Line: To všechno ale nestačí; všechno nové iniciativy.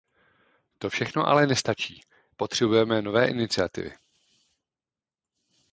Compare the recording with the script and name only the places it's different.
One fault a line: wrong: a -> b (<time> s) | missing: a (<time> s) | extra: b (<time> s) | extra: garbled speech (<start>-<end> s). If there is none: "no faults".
wrong: všechno -> potřebujeme (2.4 s)